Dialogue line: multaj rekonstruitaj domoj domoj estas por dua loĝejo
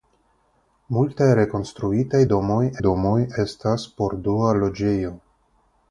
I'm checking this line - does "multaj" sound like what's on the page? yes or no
yes